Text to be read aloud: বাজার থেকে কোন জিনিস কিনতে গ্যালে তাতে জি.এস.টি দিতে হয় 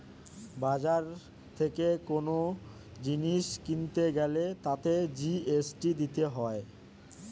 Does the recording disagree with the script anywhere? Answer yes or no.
no